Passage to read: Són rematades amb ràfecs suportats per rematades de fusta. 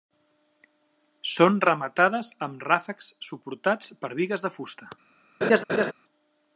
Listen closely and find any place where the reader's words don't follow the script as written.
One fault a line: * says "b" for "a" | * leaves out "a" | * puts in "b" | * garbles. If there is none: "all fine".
* says "bigues" for "rematades"